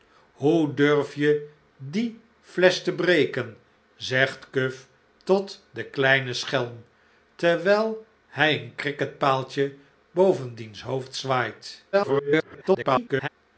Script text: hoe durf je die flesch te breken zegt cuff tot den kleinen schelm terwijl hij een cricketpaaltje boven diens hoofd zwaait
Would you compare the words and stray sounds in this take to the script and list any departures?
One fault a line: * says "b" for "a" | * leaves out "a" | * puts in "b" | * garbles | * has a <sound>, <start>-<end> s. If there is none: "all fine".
* garbles